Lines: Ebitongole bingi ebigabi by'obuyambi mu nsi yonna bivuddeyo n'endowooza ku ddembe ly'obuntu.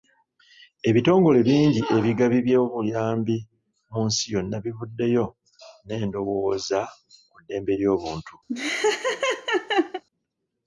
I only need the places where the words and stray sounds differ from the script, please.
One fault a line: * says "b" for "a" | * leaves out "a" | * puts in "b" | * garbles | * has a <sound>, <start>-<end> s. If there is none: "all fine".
* has a laugh, 8.5-10.0 s